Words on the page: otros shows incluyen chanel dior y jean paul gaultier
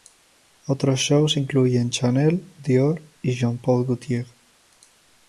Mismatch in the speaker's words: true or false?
false